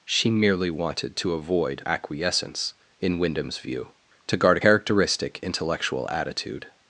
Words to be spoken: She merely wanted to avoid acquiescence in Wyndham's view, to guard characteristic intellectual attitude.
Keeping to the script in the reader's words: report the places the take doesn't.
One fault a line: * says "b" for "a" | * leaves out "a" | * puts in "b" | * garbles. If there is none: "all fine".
all fine